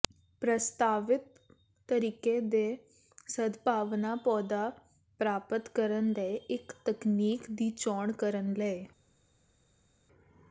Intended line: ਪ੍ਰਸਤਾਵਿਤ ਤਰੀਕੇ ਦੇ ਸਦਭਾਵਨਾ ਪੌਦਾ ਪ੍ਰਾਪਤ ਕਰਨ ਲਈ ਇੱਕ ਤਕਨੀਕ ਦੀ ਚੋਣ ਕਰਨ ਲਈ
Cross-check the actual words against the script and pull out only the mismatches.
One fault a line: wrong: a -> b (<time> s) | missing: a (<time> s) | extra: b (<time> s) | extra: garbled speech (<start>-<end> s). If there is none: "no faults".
no faults